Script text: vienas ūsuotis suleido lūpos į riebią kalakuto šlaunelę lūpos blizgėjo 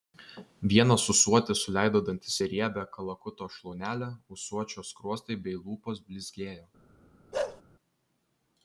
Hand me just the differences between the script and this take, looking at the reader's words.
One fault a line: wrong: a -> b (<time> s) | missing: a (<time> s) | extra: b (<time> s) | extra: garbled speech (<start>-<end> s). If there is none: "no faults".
wrong: lūpos -> dantis (2.1 s)
extra: ūsuočio skruostai bei (4.4 s)